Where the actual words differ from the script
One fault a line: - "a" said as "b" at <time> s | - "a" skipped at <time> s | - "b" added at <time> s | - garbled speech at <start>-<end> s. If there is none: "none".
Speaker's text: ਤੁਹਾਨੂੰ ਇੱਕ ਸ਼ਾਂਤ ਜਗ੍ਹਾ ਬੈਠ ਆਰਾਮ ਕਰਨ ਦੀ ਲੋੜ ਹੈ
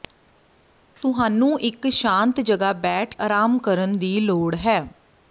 none